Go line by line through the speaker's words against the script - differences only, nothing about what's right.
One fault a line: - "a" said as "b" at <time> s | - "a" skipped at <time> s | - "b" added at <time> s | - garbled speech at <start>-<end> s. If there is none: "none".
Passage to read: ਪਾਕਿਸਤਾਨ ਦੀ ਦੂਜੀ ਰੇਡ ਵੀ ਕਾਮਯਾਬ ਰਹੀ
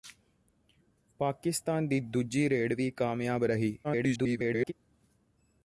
- garbled speech at 3.8-4.7 s